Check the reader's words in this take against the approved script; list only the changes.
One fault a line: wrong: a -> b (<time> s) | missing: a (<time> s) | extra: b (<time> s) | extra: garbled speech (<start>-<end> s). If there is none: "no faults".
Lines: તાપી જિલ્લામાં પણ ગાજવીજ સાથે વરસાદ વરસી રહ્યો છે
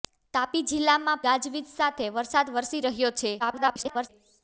missing: પણ (1.2 s)
extra: garbled speech (3.4-4.1 s)